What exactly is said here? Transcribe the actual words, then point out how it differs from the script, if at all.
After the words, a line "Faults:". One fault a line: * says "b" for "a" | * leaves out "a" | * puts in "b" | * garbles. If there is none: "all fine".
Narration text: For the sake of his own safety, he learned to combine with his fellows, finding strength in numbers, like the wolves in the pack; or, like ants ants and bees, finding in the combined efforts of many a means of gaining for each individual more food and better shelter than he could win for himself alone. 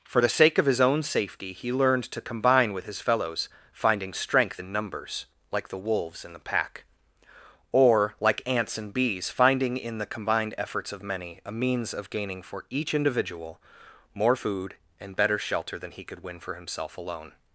For the sake of his own safety, he learned to combine with his fellows, finding strength in numbers, like the wolves in the pack; or, like ants and bees, finding in the combined efforts of many a means of gaining for each individual more food and better shelter than he could win for himself alone.
Faults:
* leaves out "ants"